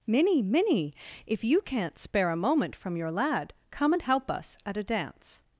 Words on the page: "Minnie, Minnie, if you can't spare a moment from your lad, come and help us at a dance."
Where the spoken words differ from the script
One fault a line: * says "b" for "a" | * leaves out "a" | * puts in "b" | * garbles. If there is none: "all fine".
all fine